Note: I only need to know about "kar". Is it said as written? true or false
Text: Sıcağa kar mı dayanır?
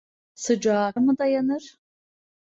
false